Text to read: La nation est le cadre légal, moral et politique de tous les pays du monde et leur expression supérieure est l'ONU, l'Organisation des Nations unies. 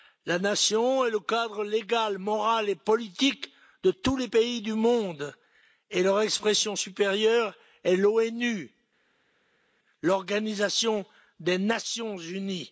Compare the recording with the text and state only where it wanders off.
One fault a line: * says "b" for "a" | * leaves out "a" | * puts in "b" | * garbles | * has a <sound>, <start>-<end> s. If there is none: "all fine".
all fine